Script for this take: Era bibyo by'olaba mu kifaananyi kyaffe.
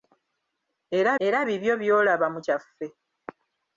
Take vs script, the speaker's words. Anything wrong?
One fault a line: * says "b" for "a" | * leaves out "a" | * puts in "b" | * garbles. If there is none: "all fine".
* puts in "era"
* leaves out "kifaananyi"